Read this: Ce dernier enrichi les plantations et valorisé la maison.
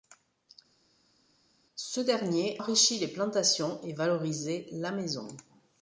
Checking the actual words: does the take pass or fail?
pass